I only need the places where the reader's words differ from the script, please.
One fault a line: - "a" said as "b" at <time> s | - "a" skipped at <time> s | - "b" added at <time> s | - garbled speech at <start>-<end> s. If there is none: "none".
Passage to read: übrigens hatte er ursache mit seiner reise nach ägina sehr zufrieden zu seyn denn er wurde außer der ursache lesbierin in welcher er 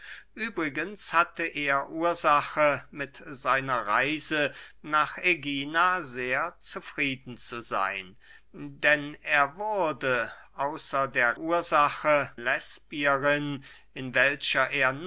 none